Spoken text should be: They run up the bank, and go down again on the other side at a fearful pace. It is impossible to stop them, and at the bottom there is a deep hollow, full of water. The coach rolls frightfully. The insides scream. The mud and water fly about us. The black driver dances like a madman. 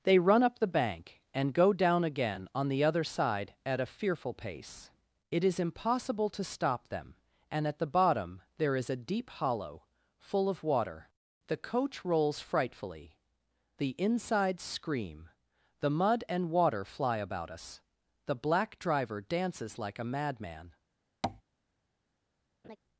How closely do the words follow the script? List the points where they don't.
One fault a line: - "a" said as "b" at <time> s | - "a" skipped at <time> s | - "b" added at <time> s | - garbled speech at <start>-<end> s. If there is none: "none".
none